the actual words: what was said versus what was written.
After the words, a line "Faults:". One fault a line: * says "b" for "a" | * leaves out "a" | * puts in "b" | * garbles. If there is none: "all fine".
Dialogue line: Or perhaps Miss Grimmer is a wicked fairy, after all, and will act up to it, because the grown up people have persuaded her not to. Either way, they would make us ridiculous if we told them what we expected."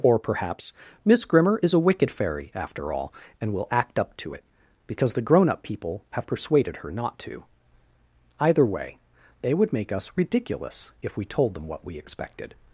Or perhaps Miss Grimmer is a wicked fairy, after all, and will act up to it, because the grown up people have persuaded her not to. Either way, they would make us ridiculous if we told them what we expected."
Faults:
all fine